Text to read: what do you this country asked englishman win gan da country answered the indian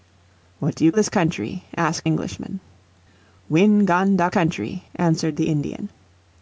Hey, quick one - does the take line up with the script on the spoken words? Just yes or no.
yes